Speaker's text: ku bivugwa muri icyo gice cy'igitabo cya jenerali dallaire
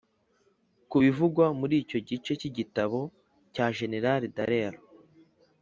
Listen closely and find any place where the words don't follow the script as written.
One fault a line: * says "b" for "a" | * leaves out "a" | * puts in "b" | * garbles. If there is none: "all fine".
all fine